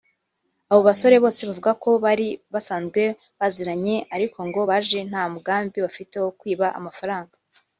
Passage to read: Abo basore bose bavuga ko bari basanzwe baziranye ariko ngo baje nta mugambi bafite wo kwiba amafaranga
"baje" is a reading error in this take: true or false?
false